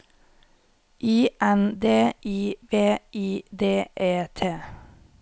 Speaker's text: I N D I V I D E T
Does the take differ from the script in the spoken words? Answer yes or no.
no